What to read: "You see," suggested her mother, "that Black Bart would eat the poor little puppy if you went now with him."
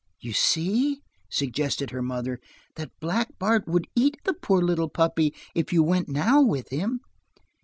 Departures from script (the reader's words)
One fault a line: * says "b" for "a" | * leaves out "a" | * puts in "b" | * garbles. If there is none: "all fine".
all fine